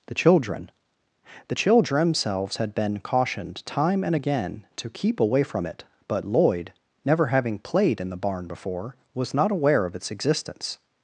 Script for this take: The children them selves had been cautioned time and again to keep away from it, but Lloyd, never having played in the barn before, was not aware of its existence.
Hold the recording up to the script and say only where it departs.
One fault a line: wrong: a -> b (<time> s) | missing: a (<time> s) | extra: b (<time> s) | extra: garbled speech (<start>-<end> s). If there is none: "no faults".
wrong: them selves -> the children themselves (1.5 s)